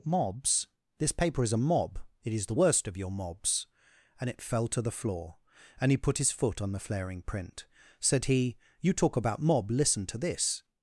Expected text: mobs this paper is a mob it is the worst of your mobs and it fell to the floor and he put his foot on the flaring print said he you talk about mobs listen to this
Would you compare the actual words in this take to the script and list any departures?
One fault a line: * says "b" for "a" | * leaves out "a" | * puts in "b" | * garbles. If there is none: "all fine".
* says "mob" for "mobs"